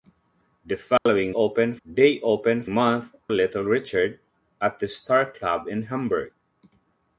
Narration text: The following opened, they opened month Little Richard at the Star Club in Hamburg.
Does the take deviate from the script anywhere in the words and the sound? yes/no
yes